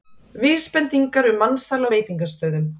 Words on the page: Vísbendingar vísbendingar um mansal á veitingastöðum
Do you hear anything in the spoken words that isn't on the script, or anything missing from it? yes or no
yes